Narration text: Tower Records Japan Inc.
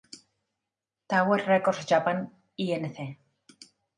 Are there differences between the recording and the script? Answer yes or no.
no